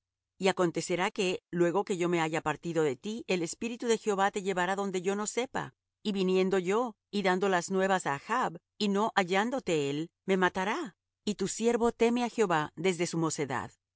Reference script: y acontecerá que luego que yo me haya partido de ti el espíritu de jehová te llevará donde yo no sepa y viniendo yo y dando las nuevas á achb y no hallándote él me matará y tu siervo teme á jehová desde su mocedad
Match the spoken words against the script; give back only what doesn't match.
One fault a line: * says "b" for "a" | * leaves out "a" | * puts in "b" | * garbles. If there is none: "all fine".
all fine